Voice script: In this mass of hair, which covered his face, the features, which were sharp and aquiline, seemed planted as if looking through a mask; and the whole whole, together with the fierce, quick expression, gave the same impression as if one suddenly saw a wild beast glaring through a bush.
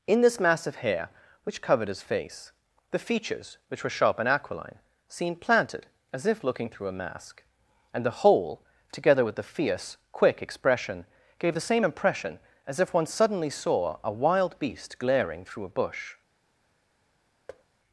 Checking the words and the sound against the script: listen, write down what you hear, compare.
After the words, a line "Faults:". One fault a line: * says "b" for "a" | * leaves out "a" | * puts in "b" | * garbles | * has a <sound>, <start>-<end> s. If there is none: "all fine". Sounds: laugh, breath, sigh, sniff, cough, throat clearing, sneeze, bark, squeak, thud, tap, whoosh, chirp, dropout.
In this mass of hair, which covered his face, the features, which were sharp and aquiline, seemed planted as if looking through a mask; and the whole, together with the fierce, quick expression, gave the same impression as if one suddenly saw a wild beast glaring through a bush.
Faults:
* leaves out "whole"
* has a thud, 17.5-17.6 s